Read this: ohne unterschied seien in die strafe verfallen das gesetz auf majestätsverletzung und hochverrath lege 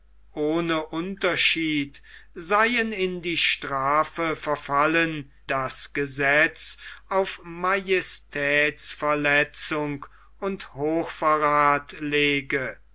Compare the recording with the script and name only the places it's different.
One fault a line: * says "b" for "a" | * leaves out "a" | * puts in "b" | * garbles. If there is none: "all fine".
all fine